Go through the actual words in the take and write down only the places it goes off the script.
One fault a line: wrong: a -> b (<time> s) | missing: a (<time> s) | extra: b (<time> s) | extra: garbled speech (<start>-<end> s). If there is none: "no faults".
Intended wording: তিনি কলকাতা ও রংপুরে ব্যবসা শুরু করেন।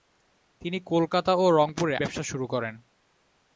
no faults